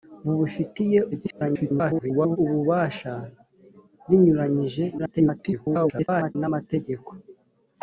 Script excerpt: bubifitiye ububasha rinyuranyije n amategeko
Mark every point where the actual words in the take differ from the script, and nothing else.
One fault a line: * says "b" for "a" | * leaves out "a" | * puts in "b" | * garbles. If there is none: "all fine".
* garbles
* garbles